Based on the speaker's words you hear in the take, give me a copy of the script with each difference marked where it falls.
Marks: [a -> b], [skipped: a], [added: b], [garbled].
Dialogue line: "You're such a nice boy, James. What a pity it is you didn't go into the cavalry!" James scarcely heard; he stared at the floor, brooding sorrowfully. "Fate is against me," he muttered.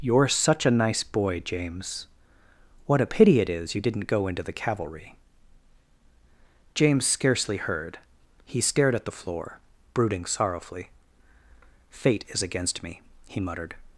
"You're such a nice boy, James. What a pity it is you didn't go into the cavalry!" James scarcely heard; he stared at the floor, brooding sorrowfully. "Fate is against me," he muttered.